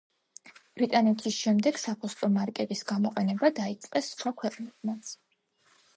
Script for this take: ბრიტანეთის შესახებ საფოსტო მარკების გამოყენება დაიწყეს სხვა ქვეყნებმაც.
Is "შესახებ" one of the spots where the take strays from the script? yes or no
yes